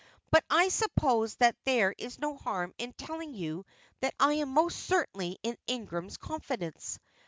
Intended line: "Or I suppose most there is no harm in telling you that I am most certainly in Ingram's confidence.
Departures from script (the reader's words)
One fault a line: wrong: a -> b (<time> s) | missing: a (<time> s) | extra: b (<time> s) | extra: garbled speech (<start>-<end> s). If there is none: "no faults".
wrong: Or -> But (0.3 s)
wrong: most -> that (1.4 s)